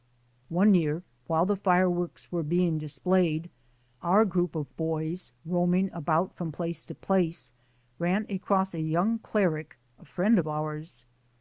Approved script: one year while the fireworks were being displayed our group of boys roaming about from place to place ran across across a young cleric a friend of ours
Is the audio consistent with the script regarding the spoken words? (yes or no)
no